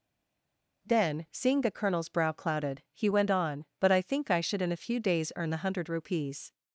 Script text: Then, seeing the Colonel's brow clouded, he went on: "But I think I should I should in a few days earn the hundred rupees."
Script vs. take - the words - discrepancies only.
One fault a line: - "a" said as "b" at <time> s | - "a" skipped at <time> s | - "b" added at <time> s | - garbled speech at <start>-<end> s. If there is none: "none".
- "I should" skipped at 4.6 s